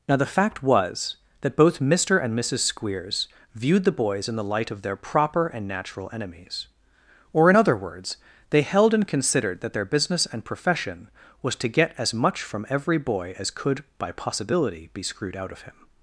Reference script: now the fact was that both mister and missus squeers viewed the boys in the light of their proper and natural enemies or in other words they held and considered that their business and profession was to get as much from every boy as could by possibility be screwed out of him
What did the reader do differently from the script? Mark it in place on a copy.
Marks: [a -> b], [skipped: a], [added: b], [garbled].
now the fact was that both mister and missus squeers viewed the boys in the light of their proper and natural enemies or in other words they held and considered that their business and profession was to get as much from every boy as could by possibility be screwed out of him